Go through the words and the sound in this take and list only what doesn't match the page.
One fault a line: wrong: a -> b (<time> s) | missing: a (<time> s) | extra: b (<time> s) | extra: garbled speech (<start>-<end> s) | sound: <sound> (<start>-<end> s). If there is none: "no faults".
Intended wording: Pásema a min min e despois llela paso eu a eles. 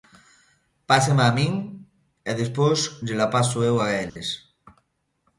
missing: min (1.5 s)
sound: dropout (4.1-4.2 s)